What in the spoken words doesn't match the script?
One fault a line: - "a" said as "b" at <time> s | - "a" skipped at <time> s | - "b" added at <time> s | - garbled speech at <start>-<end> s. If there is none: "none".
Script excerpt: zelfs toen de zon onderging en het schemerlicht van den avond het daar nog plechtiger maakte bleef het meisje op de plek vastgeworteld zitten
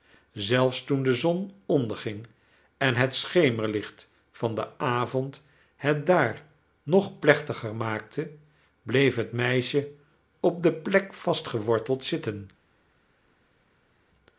none